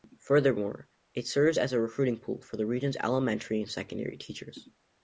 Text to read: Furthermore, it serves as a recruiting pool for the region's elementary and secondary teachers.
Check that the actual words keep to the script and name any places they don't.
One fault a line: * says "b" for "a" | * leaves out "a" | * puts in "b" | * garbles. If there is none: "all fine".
all fine